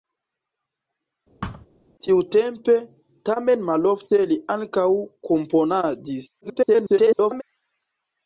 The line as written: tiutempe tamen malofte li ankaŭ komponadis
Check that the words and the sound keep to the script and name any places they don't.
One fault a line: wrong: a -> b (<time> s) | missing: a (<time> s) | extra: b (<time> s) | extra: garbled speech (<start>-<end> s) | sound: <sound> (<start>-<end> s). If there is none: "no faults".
sound: thud (1.4-1.7 s)
extra: garbled speech (6.4-7.4 s)